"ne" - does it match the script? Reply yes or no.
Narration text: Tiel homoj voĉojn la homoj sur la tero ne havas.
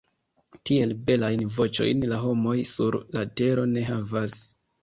yes